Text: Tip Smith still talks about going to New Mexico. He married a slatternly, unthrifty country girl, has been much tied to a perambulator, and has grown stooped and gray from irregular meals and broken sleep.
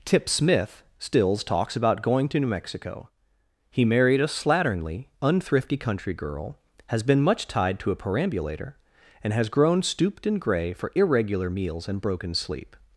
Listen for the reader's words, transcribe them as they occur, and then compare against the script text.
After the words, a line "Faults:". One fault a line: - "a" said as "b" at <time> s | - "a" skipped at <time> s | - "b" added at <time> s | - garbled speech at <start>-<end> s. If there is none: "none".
Tip Smith stills talks about going to New Mexico. He married a slatternly, unthrifty country girl, has been much tied to a perambulator, and has grown stooped and gray for irregular meals and broken sleep.
Faults:
- "still" said as "stills" at 1.0 s
- "from" said as "for" at 10.7 s